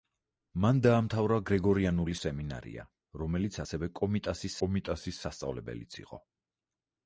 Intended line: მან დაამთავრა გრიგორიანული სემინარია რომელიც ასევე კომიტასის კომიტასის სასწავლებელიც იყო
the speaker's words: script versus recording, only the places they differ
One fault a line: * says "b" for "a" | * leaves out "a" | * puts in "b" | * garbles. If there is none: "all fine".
all fine